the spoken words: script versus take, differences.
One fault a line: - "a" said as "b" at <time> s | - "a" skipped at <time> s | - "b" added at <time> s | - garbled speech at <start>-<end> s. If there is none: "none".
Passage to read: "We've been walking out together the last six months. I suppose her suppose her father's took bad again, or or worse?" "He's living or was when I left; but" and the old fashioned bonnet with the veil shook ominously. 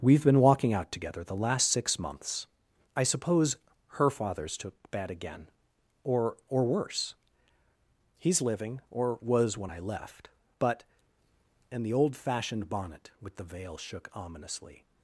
- "suppose her" skipped at 4.1 s